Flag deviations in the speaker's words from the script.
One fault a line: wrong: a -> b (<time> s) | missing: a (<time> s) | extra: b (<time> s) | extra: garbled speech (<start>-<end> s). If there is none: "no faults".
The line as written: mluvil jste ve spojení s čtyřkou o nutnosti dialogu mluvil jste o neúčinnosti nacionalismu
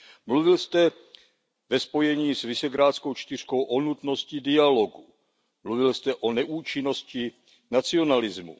extra: visegrádskou (2.4 s)